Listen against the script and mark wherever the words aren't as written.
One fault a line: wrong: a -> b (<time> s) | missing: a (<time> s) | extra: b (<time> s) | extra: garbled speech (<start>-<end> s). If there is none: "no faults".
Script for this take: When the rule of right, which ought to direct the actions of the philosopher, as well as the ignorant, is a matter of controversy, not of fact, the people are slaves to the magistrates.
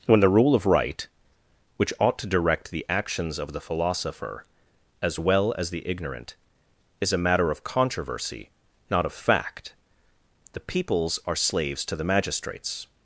wrong: people -> peoples (10.6 s)